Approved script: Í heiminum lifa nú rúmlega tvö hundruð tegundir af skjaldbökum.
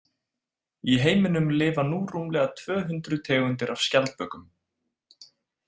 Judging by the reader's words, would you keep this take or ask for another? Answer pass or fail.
pass